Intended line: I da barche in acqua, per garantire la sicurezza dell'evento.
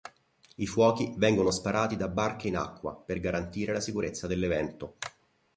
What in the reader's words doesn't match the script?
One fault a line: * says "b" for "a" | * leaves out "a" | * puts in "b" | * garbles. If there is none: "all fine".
* puts in "fuochi vengono sparati"